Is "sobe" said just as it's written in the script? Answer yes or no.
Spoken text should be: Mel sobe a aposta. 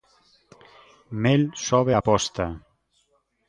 yes